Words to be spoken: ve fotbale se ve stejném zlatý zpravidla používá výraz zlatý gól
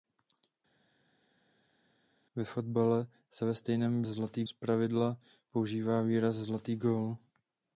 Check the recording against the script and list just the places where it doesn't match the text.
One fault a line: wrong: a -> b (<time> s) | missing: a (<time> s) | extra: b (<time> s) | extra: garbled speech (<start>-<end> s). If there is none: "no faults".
no faults